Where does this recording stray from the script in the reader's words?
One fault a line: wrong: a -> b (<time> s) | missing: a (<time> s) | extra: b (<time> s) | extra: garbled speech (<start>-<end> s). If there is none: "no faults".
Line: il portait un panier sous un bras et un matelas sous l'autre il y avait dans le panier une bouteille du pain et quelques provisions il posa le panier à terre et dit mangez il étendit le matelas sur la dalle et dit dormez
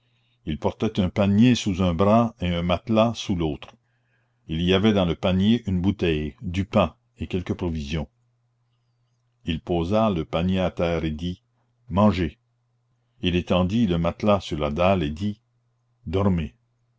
no faults